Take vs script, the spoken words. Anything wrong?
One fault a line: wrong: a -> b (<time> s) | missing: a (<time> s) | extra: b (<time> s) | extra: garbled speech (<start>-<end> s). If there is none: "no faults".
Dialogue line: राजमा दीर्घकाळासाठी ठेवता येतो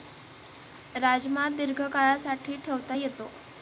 no faults